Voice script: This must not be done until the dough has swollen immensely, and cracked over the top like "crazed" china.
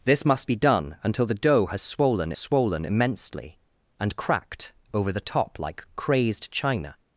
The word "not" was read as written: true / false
false